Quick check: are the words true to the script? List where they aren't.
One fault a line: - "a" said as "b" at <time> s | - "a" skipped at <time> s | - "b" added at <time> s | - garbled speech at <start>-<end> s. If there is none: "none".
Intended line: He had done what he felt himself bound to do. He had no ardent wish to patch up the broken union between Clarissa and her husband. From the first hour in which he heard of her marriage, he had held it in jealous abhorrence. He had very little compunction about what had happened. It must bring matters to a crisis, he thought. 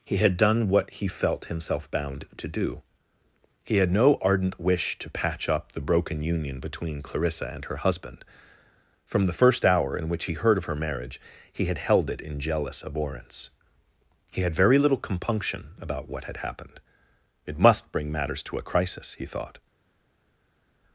none